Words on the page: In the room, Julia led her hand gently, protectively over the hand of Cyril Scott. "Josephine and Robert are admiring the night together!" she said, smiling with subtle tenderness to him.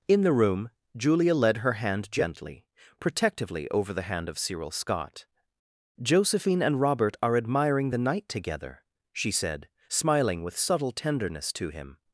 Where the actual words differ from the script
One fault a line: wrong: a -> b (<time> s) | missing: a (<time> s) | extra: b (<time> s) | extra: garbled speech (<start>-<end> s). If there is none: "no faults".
no faults